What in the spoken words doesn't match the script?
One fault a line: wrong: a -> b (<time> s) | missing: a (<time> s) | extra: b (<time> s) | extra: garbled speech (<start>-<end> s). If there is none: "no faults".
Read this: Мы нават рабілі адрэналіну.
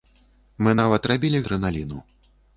no faults